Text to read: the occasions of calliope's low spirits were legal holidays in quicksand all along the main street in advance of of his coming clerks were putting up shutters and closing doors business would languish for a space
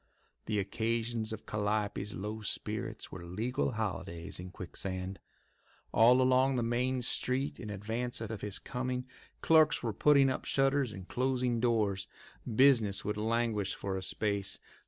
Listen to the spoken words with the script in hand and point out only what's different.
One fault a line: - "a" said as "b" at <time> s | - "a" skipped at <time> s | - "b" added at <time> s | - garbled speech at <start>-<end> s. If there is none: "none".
none